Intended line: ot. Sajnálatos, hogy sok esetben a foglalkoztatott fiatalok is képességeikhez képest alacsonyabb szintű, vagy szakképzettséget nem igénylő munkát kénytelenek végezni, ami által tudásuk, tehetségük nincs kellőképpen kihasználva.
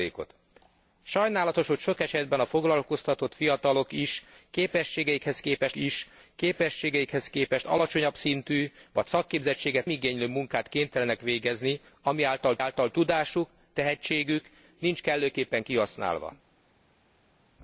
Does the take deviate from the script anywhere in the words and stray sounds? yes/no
yes